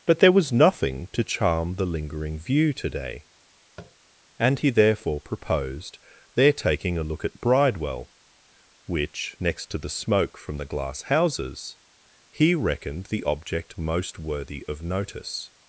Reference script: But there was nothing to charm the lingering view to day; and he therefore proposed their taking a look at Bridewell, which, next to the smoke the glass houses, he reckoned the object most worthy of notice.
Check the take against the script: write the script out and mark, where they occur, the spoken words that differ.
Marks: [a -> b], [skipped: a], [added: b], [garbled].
But there was nothing to charm the lingering view to day; and he therefore proposed their taking a look at Bridewell, which, next to the smoke [added: from] the glass houses, he reckoned the object most worthy of notice.